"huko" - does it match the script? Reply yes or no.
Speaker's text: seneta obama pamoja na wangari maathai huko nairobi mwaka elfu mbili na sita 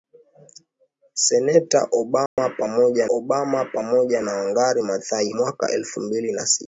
no